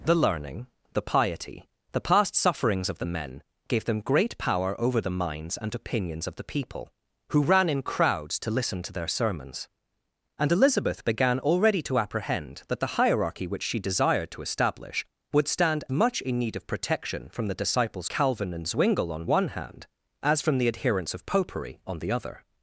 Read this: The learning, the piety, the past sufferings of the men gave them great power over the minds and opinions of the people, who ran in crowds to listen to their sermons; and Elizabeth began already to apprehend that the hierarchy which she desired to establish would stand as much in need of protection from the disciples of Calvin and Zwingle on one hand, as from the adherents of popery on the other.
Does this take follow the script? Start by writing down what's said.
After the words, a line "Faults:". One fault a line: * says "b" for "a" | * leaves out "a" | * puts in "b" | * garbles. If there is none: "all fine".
The learning, the piety, the past sufferings of the men gave them great power over the minds and opinions of the people, who ran in crowds to listen to their sermons; and Elizabeth began already to apprehend that the hierarchy which she desired to establish would stand much in need of protection from the disciples Calvin and Zwingle on one hand, as from the adherents of popery on the other.
Faults:
* leaves out "as"
* leaves out "of"